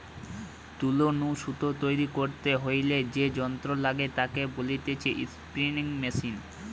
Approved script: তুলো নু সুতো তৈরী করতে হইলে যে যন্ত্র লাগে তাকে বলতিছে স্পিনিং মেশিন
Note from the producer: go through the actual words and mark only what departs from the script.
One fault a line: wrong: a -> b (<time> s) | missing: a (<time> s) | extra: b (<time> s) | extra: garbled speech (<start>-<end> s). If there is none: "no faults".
no faults